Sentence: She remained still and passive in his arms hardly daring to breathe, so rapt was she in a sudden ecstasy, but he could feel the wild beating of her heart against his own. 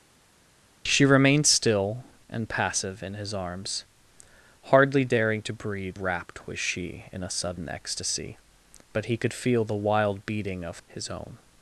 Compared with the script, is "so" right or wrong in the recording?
wrong